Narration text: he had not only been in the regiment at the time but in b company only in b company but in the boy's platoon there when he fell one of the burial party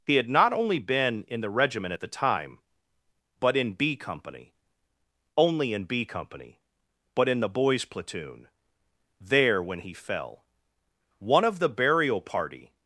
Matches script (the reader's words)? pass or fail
pass